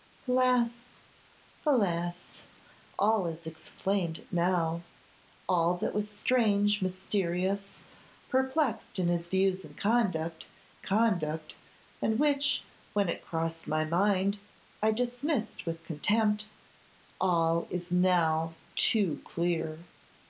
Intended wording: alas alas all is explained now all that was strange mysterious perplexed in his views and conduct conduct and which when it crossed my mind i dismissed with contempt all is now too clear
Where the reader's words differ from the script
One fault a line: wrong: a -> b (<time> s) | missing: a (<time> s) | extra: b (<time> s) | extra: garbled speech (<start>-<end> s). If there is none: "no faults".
no faults